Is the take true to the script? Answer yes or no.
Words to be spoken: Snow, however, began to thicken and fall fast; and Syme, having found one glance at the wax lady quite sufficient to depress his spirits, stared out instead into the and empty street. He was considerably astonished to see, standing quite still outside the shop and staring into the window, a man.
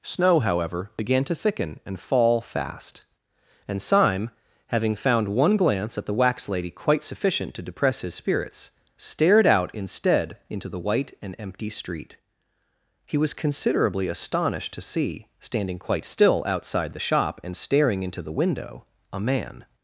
no